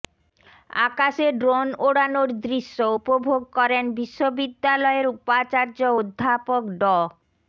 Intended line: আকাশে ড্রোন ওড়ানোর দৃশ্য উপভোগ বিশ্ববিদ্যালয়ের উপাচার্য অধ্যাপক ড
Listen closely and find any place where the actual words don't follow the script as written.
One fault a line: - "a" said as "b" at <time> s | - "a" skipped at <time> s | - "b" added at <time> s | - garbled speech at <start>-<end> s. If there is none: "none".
- "করেন" added at 3.6 s